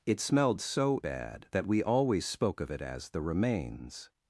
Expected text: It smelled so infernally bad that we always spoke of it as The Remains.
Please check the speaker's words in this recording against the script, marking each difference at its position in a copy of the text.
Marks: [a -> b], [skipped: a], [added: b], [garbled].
It smelled so [skipped: infernally] bad that we always spoke of it as The Remains.